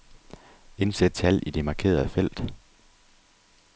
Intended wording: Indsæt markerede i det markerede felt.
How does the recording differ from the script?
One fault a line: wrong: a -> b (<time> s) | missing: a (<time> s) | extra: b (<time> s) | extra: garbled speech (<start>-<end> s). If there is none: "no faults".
wrong: markerede -> tal (1.1 s)